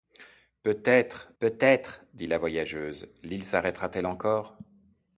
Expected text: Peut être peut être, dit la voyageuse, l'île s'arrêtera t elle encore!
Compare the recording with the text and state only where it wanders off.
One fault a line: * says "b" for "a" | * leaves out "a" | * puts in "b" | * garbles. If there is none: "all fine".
all fine